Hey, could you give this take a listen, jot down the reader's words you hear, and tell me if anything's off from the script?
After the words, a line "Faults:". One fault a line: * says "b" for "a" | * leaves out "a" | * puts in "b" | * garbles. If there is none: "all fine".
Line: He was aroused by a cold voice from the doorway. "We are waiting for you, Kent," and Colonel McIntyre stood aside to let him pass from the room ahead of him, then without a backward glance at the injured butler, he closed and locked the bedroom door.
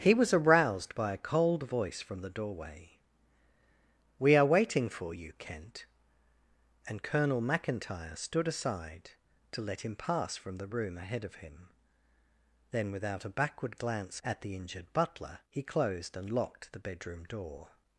He was aroused by a cold voice from the doorway. "We are waiting for you, Kent," and Colonel McIntyre stood aside to let him pass from the room ahead of him, then without a backward glance at the injured butler, he closed and locked the bedroom door.
Faults:
all fine